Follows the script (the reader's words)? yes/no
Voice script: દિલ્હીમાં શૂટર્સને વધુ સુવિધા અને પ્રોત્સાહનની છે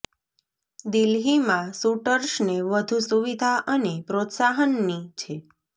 yes